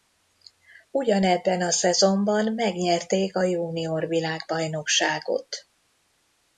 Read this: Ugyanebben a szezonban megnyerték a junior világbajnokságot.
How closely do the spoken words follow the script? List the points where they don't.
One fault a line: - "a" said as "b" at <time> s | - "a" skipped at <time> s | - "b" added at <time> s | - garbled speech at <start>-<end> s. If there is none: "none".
none